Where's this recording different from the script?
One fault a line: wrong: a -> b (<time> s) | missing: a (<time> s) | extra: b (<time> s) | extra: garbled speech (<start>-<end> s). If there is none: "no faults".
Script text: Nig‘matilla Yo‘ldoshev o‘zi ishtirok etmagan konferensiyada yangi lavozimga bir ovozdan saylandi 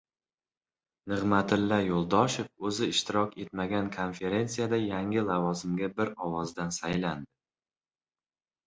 no faults